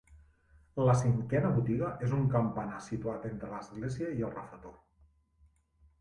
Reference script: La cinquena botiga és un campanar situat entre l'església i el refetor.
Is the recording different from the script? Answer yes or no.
no